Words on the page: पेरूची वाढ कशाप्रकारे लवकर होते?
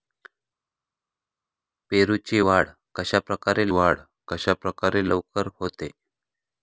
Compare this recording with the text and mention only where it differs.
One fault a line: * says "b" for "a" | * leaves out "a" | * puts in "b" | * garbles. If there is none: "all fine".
* puts in "वाढ कशाप्रकारे"